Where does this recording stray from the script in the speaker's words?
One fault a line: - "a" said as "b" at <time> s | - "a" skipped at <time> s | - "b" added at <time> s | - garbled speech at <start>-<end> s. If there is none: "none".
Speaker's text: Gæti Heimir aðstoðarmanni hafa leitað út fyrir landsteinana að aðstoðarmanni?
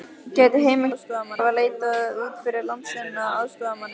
none